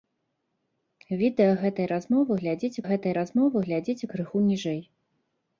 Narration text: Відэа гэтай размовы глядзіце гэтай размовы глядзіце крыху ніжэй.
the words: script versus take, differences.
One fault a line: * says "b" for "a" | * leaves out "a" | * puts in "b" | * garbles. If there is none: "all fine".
all fine